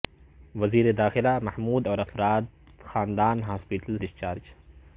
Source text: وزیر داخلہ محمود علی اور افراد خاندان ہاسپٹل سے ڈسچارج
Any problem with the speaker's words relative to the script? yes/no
yes